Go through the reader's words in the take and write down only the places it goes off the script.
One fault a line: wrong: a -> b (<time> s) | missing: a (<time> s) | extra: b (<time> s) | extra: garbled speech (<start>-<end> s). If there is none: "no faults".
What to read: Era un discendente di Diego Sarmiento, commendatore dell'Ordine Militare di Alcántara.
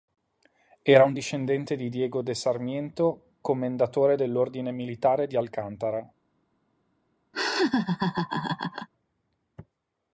extra: de (2.2 s)